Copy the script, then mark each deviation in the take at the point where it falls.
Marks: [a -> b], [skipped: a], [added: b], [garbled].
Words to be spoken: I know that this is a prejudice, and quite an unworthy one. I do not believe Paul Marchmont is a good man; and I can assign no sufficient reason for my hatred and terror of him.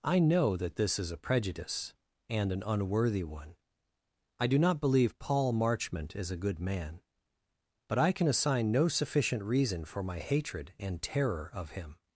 I know that this is a prejudice, and [skipped: quite] an unworthy one. I do not believe Paul Marchmont is a good man; [and -> but] I can assign no sufficient reason for my hatred and terror of him.